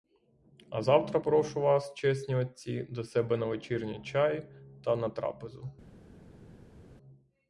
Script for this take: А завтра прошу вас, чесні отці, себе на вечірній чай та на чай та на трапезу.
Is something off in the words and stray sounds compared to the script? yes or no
yes